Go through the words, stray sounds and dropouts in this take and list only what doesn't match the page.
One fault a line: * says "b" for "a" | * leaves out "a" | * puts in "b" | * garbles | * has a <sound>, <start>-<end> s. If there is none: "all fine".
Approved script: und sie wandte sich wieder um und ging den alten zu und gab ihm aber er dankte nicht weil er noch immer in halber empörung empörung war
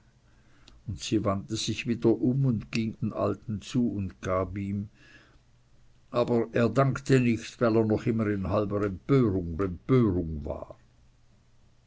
all fine